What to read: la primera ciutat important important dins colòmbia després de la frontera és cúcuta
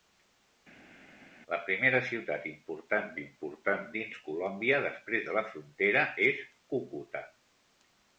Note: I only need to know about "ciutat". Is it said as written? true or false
true